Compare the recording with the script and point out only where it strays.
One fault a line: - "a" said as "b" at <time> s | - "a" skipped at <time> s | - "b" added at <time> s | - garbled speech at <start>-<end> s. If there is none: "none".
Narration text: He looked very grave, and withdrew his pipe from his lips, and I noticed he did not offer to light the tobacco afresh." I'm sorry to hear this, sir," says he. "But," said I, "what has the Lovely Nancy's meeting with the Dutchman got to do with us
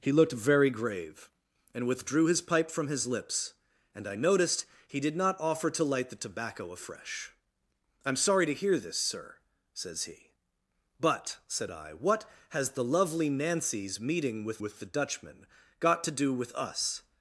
- "with" added at 14.6 s